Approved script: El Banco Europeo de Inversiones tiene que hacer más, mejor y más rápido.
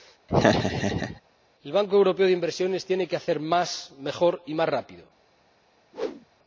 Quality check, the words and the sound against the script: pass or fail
fail